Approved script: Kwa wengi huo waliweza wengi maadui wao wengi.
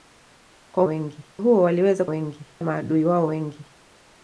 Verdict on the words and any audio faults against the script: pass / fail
pass